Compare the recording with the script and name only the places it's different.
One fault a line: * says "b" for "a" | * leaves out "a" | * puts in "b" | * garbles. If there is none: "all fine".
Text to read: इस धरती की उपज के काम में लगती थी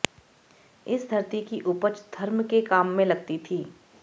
* puts in "धर्म"